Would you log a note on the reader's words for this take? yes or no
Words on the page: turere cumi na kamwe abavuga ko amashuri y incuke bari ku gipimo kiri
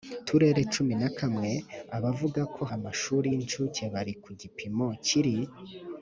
no